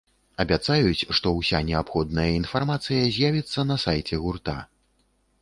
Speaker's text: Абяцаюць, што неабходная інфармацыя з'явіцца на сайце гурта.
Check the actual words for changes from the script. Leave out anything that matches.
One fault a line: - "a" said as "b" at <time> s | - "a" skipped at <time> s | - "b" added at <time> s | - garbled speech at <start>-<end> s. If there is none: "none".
- "ўся" added at 1.4 s